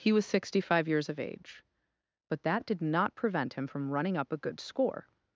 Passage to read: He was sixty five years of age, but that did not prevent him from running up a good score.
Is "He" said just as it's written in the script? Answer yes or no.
yes